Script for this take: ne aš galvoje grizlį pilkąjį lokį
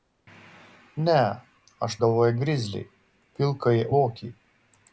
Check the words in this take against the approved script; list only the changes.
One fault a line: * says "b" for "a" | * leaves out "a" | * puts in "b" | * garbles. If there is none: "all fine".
all fine